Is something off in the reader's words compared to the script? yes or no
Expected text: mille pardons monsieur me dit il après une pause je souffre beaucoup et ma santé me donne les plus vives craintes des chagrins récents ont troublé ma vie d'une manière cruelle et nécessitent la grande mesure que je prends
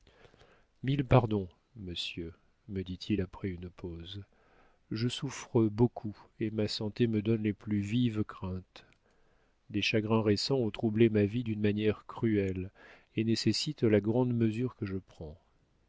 no